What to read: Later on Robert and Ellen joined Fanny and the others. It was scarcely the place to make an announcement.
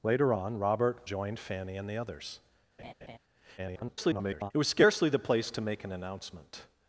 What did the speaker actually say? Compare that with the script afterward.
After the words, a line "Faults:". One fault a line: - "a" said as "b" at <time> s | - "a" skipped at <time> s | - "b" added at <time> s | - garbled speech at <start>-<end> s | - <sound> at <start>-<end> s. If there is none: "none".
Later on Robert joined Fanny and the others. [garbled] It was scarcely the place to make an announcement.
Faults:
- "and Ellen" skipped at 1.0 s
- laugh at 2.8-3.2 s
- garbled speech at 3.6-4.5 s